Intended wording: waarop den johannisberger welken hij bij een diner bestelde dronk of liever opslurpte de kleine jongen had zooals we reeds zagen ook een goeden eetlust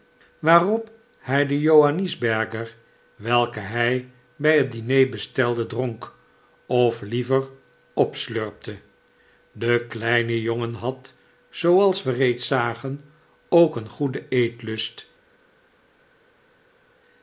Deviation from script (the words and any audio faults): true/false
true